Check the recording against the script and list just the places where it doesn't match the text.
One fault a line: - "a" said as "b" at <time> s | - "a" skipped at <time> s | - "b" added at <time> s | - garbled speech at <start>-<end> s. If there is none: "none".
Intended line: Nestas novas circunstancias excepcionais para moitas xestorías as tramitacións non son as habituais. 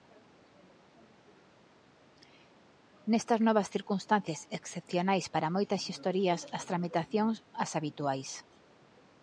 - "non son" skipped at 7.3 s